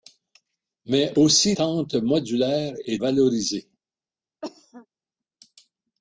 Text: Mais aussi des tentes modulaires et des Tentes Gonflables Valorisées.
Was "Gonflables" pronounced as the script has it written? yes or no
no